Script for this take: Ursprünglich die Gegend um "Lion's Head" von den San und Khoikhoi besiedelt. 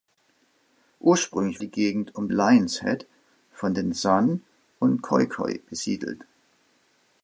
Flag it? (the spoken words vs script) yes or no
no